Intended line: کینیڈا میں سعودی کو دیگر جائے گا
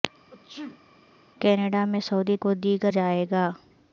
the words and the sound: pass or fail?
fail